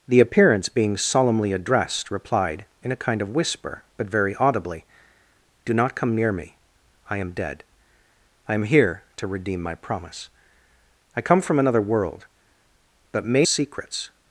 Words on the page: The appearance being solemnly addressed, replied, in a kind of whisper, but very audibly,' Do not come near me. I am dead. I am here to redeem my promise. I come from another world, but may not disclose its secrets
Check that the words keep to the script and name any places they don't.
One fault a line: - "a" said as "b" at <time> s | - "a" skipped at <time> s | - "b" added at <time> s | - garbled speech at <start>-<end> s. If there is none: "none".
- "not disclose its" skipped at 13.4 s